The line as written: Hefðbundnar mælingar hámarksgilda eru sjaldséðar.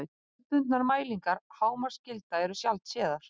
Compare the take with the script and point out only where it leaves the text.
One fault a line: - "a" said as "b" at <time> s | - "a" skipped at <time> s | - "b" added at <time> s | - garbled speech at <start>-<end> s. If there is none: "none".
none